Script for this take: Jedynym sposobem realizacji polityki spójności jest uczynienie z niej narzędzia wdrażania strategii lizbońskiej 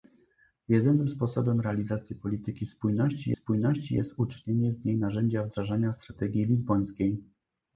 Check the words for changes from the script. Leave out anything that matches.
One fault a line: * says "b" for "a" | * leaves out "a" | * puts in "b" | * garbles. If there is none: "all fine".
* puts in "spójności"